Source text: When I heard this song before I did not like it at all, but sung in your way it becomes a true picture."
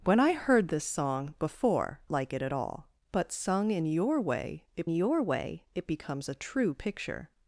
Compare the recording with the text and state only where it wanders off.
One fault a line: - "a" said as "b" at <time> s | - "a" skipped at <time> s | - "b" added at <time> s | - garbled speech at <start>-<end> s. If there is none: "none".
- "I did not" skipped at 2.0 s
- "your way it" added at 4.9 s